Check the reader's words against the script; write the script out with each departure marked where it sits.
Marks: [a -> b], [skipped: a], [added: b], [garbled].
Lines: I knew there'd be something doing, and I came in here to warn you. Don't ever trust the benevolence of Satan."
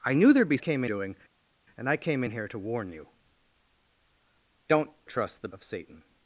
I knew there'd be [something -> came] doing, and I came in here to warn you. Don't [skipped: ever] trust the [skipped: benevolence] of Satan."